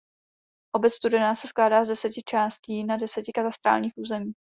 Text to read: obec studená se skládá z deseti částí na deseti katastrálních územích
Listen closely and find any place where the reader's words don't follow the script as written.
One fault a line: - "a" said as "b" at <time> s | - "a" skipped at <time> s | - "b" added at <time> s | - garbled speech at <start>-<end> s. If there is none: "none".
none